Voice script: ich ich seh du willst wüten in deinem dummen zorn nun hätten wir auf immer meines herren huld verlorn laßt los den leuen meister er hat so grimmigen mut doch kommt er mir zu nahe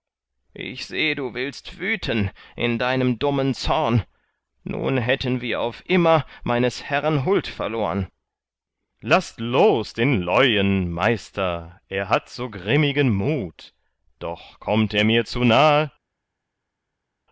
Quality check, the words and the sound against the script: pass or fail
fail